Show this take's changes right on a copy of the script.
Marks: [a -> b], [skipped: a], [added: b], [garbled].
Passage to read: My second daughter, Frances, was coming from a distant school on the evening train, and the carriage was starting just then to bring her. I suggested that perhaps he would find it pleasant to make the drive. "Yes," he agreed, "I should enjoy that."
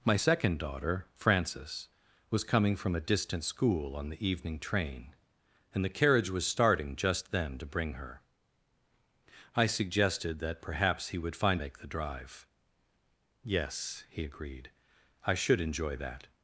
My second daughter, Frances, was coming from a distant school on the evening train, and the carriage was starting just then to bring her. I suggested that perhaps he would find [skipped: it pleasant to] make the drive. "Yes," he agreed, "I should enjoy that."